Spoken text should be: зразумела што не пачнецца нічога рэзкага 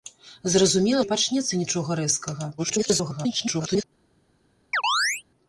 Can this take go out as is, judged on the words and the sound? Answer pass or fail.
fail